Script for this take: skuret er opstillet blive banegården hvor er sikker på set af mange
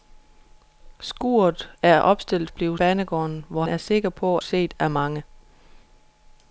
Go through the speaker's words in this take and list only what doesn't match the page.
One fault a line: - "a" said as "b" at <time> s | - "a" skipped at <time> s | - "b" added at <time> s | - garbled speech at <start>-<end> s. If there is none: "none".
none